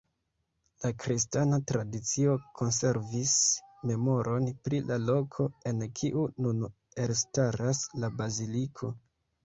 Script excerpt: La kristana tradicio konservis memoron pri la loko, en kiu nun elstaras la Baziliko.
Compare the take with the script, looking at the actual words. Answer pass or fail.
pass